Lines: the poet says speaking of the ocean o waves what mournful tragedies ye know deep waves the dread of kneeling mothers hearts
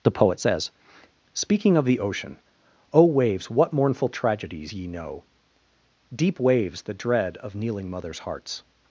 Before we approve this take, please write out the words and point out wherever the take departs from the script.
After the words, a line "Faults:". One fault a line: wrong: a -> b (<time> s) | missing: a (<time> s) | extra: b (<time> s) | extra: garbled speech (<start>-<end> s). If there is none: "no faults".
the poet says speaking of the ocean o waves what mournful tragedies ye know deep waves the dread of kneeling mothers hearts
Faults:
no faults